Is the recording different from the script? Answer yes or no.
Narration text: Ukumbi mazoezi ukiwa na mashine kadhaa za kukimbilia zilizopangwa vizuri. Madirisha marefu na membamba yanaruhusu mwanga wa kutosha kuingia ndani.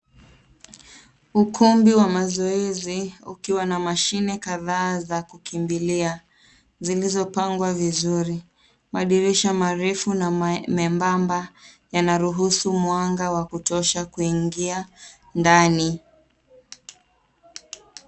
yes